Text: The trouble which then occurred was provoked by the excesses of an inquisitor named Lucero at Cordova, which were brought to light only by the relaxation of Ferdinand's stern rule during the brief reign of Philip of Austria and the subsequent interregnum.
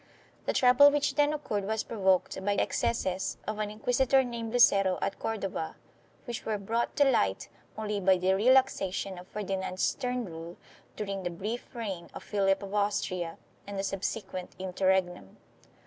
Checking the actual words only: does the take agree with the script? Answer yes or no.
no